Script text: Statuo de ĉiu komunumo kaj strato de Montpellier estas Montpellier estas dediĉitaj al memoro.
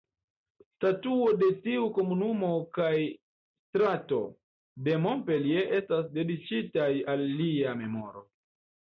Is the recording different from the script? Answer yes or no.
yes